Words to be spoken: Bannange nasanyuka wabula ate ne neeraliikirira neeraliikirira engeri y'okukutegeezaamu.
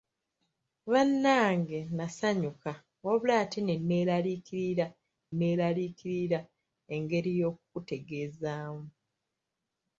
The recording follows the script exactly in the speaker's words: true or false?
true